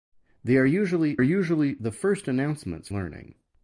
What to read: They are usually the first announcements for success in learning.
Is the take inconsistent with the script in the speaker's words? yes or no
yes